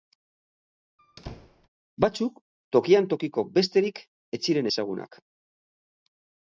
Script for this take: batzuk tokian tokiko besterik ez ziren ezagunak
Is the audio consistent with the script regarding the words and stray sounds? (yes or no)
no